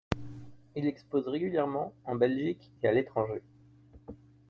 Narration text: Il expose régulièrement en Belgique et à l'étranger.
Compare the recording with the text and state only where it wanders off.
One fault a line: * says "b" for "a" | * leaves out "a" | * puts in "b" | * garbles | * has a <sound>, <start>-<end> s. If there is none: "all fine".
all fine